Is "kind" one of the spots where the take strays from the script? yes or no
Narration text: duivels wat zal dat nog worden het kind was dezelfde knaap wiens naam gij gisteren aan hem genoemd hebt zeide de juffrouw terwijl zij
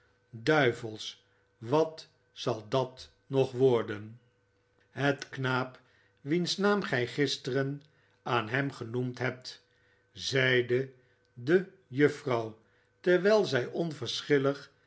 yes